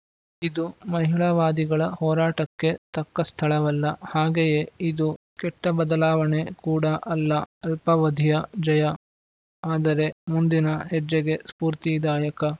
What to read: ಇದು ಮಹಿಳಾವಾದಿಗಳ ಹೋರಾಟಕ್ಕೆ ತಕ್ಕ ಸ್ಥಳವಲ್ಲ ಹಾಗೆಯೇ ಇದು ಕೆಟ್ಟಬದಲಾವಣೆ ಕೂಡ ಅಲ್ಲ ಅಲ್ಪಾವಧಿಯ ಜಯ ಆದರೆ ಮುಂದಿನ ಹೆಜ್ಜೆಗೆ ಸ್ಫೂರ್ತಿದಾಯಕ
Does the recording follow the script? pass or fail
pass